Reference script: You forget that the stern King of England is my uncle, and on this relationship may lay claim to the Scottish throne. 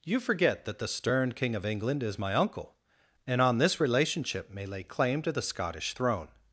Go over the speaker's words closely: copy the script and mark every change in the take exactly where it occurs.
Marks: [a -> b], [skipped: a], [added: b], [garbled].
You forget that the stern King of England is my uncle, and on this relationship may lay claim to the Scottish throne.